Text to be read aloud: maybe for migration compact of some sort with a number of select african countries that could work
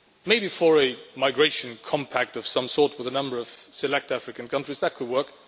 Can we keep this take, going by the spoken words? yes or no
no